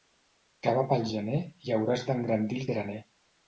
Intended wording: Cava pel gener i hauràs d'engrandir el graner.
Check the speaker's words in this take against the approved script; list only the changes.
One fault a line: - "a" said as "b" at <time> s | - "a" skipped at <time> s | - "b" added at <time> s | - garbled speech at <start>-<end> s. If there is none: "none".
none